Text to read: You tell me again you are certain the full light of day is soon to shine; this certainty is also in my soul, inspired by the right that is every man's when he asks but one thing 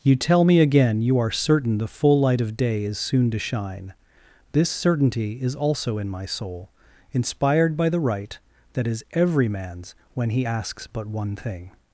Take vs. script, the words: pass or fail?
pass